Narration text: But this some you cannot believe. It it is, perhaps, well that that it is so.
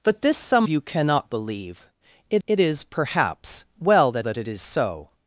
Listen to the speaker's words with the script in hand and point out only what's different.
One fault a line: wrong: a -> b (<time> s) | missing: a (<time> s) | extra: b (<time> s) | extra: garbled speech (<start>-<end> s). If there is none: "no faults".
no faults